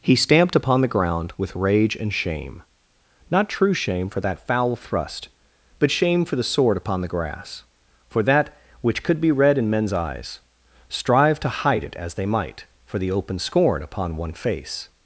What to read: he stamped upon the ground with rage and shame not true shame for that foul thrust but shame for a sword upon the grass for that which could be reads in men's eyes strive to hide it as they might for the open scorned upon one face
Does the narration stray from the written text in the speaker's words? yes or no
yes